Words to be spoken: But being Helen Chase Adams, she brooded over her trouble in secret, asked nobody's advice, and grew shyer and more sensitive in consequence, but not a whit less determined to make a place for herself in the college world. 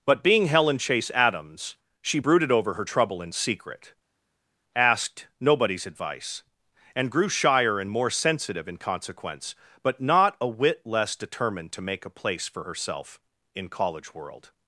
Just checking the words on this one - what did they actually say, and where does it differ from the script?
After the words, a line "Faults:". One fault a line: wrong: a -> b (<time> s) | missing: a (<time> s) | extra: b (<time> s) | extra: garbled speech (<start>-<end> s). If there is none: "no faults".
But being Helen Chase Adams, she brooded over her trouble in secret, asked nobody's advice, and grew shyer and more sensitive in consequence, but not a whit less determined to make a place for herself in college world.
Faults:
missing: the (13.7 s)